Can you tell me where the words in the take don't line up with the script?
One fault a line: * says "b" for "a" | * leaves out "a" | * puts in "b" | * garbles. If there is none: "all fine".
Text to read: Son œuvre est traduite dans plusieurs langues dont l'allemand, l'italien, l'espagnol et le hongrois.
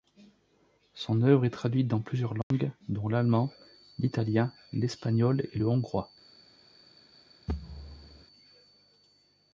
all fine